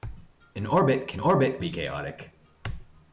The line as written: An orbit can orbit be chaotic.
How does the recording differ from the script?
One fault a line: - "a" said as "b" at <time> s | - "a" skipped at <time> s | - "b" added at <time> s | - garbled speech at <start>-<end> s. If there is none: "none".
none